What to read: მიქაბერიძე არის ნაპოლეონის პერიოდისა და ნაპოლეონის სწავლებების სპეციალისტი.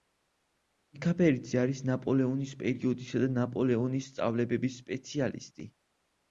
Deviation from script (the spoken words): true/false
false